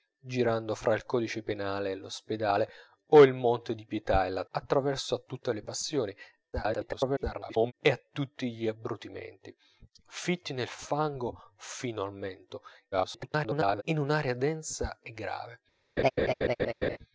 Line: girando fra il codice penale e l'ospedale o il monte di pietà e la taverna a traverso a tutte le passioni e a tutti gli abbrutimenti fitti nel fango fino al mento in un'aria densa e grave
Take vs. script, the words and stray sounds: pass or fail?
fail